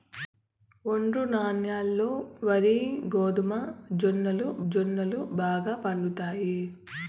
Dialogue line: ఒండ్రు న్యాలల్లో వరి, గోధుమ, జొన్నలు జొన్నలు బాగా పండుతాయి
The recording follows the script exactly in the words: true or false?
true